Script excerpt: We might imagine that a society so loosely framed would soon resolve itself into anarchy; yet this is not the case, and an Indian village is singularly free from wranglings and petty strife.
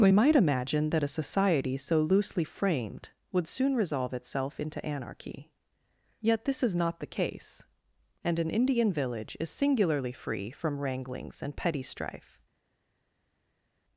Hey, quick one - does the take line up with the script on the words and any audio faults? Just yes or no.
yes